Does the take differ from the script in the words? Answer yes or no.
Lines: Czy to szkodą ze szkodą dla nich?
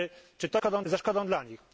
no